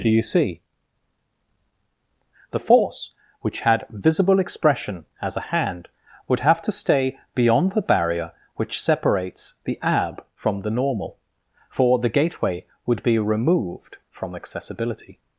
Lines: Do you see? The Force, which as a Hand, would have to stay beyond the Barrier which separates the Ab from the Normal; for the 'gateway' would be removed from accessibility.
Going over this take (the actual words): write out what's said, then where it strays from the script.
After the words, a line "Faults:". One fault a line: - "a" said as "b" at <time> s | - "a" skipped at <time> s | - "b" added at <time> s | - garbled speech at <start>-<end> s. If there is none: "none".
Do you see? The Force, which had visible expression as a Hand, would have to stay beyond the Barrier which separates the Ab from the Normal; for the 'gateway' would be removed from accessibility.
Faults:
- "had visible expression" added at 3.6 s